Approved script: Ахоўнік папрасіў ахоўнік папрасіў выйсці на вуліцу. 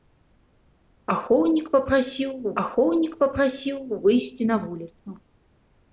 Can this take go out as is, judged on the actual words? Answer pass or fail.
pass